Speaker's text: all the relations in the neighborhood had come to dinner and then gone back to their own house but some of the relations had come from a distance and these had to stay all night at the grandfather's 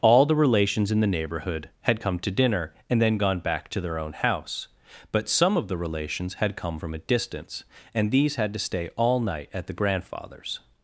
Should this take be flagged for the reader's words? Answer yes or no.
no